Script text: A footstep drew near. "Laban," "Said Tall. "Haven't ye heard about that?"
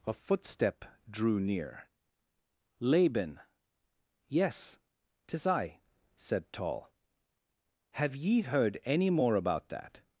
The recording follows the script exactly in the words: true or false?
false